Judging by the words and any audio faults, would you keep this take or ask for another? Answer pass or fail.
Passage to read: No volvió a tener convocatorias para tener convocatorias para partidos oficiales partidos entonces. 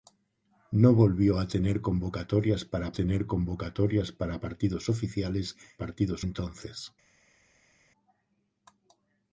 pass